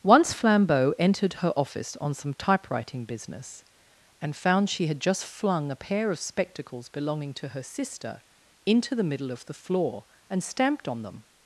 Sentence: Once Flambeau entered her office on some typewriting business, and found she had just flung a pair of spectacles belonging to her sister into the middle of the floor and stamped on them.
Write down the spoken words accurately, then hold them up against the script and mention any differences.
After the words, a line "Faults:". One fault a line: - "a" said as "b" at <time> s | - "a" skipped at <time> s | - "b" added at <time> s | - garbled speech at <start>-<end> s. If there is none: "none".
Once Flambeau entered her office on some typewriting business, and found she had just flung a pair of spectacles belonging to her sister into the middle of the floor and stamped on them.
Faults:
none